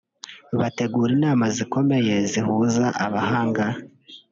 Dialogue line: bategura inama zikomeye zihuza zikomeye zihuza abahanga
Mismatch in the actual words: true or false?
true